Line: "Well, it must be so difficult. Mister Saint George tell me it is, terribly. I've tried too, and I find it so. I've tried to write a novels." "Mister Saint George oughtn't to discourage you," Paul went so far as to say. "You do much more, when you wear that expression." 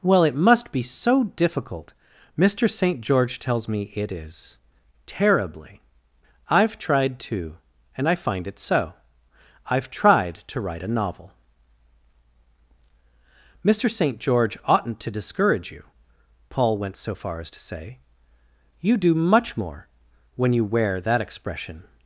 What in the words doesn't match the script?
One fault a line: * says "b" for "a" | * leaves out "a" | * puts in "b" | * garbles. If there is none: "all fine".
* says "tells" for "tell"
* says "novel" for "novels"